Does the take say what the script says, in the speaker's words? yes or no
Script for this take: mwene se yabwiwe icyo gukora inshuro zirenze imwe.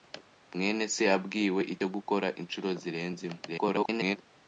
no